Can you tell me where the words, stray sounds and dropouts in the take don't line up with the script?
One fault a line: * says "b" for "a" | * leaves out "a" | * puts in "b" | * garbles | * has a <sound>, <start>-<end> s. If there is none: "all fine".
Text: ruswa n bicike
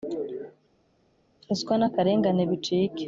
* puts in "akarengane"